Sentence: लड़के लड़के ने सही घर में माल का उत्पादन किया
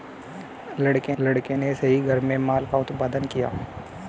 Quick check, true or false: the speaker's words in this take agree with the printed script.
true